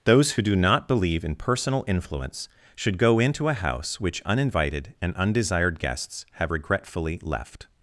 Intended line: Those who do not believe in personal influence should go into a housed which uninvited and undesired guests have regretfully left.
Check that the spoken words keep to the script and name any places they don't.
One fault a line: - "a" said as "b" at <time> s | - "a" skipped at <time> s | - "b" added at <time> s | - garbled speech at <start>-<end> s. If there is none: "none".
- "housed" said as "house" at 3.5 s